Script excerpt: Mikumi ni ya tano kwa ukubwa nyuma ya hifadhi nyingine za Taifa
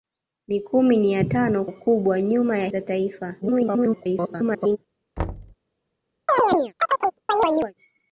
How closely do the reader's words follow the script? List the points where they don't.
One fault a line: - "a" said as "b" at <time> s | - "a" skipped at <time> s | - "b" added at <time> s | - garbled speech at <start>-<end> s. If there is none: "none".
- "kwa" skipped at 1.6 s
- "hifadhi nyingine" skipped at 2.7 s
- garbled speech at 3.4-4.8 s